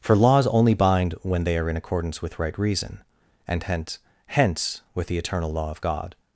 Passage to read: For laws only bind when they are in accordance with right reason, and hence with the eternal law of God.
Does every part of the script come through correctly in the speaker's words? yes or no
no